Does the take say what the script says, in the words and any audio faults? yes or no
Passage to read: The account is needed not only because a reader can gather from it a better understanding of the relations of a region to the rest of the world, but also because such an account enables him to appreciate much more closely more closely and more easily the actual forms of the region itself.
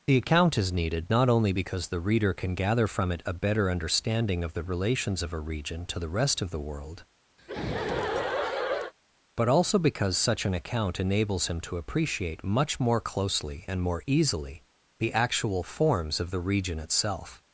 no